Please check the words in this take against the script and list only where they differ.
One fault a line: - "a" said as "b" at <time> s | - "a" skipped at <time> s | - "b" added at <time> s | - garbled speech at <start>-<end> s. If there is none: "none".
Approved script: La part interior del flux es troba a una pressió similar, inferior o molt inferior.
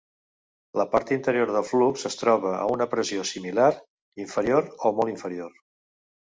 none